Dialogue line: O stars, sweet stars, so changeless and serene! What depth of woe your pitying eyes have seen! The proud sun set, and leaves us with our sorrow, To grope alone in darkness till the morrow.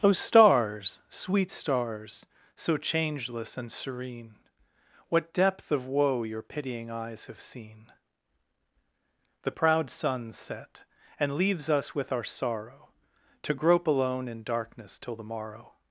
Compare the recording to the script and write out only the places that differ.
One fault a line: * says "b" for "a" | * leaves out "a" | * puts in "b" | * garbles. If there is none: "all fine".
all fine